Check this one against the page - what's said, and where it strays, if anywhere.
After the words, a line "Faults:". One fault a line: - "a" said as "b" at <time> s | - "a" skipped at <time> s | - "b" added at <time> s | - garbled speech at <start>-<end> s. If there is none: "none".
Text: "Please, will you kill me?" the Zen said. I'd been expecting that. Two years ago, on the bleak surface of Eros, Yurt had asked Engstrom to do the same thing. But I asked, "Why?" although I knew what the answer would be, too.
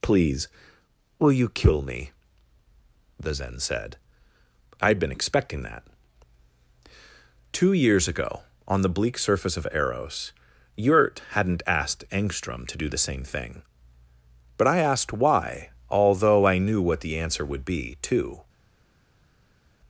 "Please, will you kill me?" the Zen said. I'd been expecting that. Two years ago, on the bleak surface of Eros, Yurt hadn't asked Engstrom to do the same thing. But I asked, "Why?" although I knew what the answer would be, too.
Faults:
- "had" said as "hadn't" at 11.3 s